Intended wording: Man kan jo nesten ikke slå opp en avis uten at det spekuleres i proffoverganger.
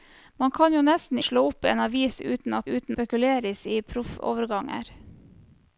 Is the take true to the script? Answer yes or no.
no